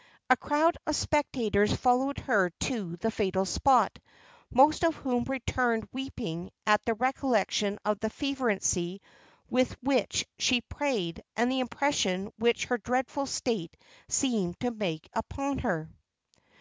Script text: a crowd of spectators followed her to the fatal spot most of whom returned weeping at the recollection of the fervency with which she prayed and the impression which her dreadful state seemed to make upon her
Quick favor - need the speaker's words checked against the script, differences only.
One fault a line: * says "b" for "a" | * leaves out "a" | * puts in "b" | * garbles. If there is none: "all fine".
all fine